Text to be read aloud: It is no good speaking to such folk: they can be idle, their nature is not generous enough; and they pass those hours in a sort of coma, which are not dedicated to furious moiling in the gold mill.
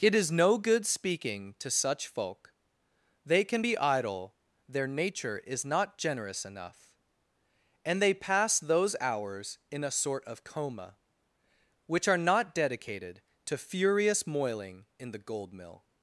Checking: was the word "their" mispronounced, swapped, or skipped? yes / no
no